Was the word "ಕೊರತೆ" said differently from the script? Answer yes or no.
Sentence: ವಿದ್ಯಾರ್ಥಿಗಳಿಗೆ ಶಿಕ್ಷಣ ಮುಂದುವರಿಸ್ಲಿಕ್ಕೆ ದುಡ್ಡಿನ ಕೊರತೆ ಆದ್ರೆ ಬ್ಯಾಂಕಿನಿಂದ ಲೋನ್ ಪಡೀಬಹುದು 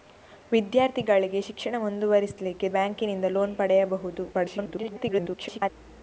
yes